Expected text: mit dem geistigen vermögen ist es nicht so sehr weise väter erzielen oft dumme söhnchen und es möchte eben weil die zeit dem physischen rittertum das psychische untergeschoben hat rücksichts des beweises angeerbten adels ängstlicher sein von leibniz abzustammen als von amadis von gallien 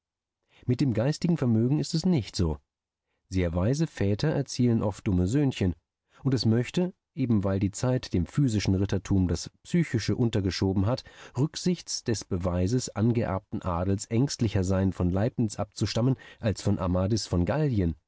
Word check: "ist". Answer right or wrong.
right